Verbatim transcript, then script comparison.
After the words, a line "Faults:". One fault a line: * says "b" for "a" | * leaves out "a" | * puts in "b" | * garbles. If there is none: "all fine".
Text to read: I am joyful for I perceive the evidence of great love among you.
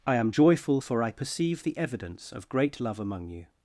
I am joyful for I perceive the evidence of great love among you.
Faults:
all fine